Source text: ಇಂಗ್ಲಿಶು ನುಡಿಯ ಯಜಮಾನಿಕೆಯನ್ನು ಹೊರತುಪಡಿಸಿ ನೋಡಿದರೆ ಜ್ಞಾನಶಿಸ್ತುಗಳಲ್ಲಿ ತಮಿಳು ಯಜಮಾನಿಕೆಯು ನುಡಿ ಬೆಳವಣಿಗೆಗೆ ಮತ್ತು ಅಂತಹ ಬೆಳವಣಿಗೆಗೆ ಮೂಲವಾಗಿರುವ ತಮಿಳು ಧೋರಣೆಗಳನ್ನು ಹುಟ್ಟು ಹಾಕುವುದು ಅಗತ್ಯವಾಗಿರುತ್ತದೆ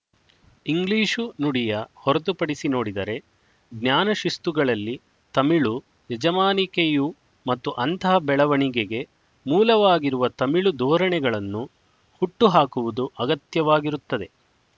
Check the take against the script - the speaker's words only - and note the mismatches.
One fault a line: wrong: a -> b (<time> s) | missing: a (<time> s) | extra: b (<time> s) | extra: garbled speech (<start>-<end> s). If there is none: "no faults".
missing: ಯಜಮಾನಿಕೆಯನ್ನು (1.7 s)
missing: ನುಡಿ ಬೆಳವಣಿಗೆಗೆ (7.1 s)